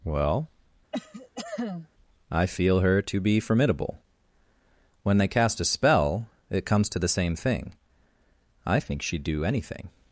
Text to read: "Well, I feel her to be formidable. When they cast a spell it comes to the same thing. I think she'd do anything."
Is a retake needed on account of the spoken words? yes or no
no